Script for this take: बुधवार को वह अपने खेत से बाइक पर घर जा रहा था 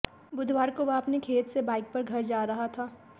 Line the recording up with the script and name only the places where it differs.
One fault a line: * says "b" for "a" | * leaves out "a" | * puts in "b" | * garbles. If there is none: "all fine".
all fine